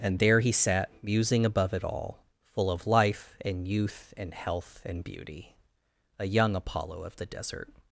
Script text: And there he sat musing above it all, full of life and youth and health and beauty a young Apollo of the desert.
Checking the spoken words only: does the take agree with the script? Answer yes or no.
yes